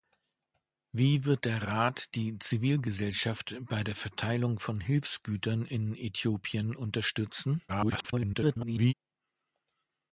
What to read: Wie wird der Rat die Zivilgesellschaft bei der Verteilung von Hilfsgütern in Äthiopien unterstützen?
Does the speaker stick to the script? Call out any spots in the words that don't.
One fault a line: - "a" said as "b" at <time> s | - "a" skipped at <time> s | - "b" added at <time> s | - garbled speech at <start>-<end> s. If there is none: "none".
- garbled speech at 7.7-8.9 s